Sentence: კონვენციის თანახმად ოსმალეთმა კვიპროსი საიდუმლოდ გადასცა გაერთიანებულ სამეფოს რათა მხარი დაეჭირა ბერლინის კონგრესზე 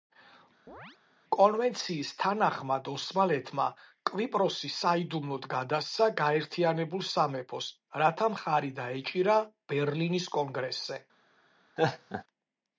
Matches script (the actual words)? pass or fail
pass